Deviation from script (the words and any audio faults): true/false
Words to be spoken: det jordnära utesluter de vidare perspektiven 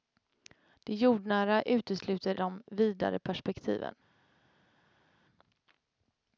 false